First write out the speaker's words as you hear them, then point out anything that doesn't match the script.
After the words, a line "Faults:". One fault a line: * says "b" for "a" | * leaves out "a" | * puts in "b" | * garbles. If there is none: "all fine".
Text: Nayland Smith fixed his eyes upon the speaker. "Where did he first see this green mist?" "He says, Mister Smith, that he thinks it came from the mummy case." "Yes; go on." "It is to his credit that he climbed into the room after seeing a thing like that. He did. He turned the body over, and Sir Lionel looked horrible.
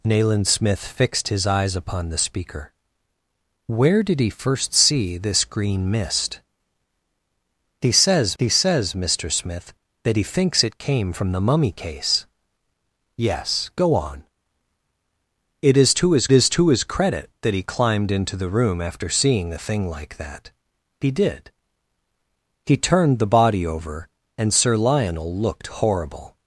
Nayland Smith fixed his eyes upon the speaker. "Where did he first see this green mist?" "He says he says, Mister Smith, that he thinks it came from the mummy case." "Yes; go on." "It is to his is to his credit that he climbed into the room after seeing a thing like that. He did. He turned the body over, and Sir Lionel looked horrible.
Faults:
* puts in "he says"
* puts in "is to his"